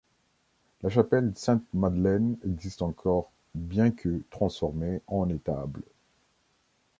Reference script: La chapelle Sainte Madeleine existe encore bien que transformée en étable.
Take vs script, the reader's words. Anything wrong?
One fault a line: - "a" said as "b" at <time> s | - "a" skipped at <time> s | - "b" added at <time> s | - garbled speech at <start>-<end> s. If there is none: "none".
none